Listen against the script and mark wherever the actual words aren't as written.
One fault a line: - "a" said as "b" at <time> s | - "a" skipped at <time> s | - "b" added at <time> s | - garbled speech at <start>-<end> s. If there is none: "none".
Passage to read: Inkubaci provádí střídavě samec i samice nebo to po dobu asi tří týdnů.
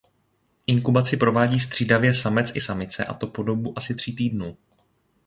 - "nebo" said as "a" at 3.0 s